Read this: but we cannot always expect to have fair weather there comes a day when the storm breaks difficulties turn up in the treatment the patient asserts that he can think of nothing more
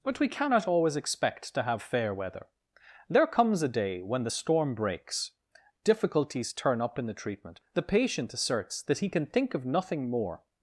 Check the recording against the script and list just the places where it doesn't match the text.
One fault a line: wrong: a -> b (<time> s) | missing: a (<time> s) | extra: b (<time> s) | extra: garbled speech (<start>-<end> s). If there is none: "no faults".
no faults